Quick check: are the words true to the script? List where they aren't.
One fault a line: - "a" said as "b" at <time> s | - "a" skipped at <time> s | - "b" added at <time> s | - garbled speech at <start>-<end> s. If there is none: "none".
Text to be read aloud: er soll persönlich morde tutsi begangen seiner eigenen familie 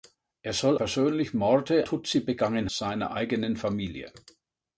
none